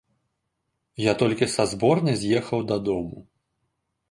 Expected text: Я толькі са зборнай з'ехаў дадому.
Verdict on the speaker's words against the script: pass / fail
pass